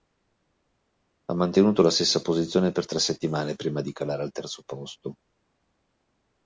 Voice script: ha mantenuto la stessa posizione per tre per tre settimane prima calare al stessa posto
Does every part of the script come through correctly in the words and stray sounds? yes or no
no